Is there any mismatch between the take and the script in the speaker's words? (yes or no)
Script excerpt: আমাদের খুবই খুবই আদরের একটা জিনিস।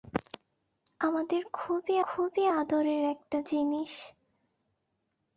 no